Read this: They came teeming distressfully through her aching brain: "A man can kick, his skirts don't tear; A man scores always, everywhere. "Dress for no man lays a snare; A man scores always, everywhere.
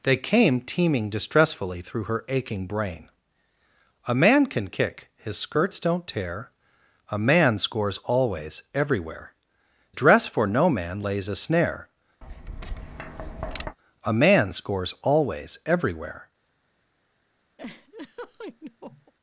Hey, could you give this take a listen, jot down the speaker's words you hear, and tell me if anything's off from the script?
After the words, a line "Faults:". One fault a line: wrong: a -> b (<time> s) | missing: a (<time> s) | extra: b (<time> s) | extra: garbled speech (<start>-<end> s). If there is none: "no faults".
They came teeming distressfully through her aching brain: "A man can kick, his skirts don't tear; A man scores always, everywhere. "Dress for no man lays a snare; A man scores always, everywhere.
Faults:
no faults